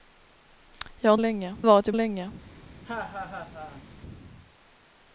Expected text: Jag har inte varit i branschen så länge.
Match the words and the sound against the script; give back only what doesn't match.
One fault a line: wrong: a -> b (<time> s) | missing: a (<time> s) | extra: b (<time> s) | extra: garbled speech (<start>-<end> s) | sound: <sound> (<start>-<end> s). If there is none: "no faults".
wrong: inte -> länge (1.2 s)
missing: branschen så (1.9 s)
sound: laugh (2.8-3.8 s)